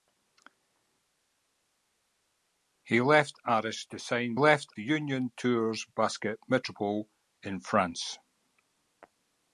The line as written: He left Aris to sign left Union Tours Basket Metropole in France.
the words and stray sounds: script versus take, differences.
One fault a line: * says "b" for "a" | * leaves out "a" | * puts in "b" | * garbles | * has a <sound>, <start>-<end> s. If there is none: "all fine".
all fine